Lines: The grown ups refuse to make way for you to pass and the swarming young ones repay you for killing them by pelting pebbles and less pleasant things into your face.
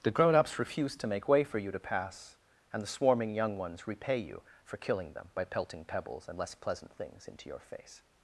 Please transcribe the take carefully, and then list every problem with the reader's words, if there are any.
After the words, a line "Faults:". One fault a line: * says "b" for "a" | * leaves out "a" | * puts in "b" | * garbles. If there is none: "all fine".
The grown ups refuse to make way for you to pass and the swarming young ones repay you for killing them by pelting pebbles and less pleasant things into your face.
Faults:
all fine